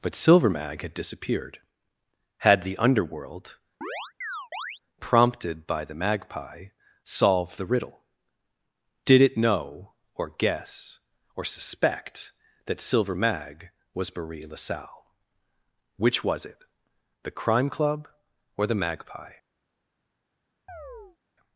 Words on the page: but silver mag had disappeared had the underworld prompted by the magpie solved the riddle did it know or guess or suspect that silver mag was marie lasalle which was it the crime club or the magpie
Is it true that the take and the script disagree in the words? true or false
false